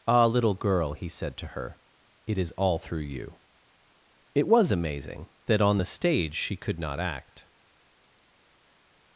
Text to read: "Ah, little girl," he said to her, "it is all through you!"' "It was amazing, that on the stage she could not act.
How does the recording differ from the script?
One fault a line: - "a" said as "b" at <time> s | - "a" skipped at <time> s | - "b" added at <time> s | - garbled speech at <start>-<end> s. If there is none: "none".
none